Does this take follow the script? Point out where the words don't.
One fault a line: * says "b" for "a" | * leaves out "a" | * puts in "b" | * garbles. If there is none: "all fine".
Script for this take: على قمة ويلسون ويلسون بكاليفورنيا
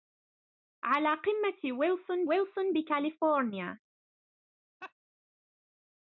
all fine